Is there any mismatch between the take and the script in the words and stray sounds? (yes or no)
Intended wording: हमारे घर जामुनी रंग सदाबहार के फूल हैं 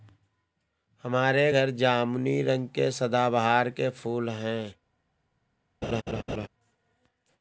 yes